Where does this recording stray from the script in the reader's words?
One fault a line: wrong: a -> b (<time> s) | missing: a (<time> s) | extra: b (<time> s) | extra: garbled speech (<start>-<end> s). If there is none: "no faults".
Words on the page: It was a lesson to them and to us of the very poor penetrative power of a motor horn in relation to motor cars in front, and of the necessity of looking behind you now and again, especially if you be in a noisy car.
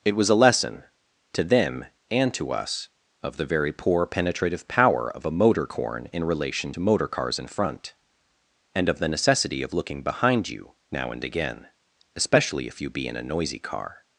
wrong: horn -> corn (5.7 s)